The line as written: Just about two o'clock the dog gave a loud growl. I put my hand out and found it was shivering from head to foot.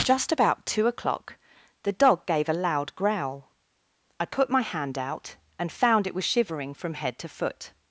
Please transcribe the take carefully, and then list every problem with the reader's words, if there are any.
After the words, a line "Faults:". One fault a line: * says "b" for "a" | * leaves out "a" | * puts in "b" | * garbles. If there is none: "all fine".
Just about two o'clock the dog gave a loud growl. I put my hand out and found it was shivering from head to foot.
Faults:
all fine